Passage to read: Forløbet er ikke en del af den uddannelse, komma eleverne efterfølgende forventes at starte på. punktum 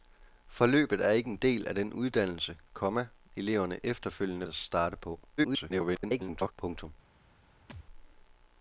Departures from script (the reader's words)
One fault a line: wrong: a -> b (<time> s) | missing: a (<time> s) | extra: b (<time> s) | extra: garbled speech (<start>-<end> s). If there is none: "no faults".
missing: forventes (4.5 s)
extra: garbled speech (5.4-6.5 s)